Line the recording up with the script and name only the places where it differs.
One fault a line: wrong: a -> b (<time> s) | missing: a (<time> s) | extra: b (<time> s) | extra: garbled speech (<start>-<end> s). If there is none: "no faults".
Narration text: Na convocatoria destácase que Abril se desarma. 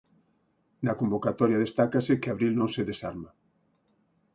extra: non (2.6 s)